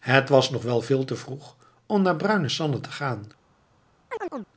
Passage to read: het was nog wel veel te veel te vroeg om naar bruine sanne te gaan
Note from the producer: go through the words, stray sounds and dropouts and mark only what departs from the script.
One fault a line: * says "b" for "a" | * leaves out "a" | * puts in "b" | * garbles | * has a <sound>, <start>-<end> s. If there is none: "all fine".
* leaves out "veel te"
* has a chirp, 4.1-4.5 s